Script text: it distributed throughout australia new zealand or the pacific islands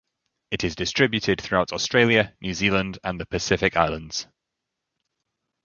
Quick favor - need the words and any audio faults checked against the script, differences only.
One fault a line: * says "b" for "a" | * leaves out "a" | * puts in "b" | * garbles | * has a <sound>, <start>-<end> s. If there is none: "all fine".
* puts in "is"
* says "and" for "or"